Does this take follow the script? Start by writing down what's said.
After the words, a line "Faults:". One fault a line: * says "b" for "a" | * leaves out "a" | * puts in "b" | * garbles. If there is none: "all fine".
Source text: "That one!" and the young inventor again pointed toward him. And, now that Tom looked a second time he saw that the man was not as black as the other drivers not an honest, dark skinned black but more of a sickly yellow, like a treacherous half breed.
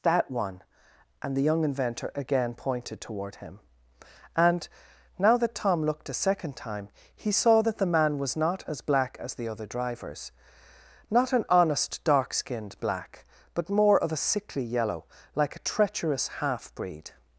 "That one!" and the young inventor again pointed toward him. And, now that Tom looked a second time he saw that the man was not as black as the other drivers not an honest, dark skinned black but more of a sickly yellow, like a treacherous half breed.
Faults:
all fine